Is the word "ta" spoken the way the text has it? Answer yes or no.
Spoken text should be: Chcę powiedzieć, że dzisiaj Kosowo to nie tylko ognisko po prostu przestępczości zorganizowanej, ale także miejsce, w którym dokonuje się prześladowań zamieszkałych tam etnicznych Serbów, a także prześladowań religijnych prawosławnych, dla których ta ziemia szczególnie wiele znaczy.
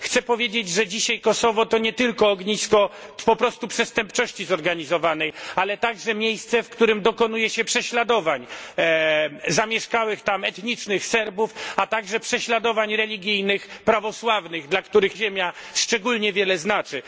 no